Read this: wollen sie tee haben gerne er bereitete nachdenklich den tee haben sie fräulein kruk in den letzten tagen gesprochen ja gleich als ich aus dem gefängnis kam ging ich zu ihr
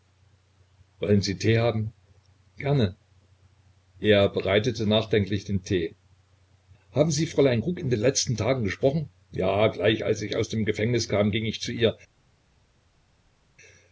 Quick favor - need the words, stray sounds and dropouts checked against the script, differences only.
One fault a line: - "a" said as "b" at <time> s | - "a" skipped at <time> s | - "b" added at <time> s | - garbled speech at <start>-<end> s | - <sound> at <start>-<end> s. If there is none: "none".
none